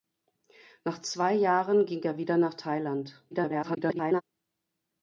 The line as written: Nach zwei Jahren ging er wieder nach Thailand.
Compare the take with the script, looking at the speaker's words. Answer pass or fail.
fail